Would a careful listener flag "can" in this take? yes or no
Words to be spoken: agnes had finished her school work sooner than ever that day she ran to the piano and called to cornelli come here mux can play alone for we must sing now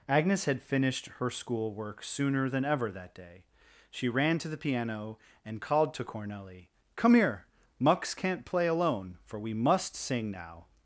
yes